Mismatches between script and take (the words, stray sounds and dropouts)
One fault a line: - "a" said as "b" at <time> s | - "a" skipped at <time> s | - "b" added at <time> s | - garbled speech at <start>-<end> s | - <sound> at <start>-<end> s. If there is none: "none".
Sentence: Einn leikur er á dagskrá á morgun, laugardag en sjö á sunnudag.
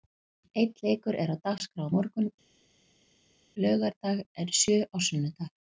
none